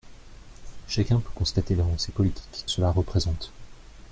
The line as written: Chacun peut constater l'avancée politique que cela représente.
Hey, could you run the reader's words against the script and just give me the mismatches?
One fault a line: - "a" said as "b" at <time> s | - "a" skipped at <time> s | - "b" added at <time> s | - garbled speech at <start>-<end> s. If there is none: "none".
- "que" skipped at 2.6 s